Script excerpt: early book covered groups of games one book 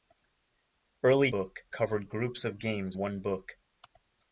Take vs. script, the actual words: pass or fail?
pass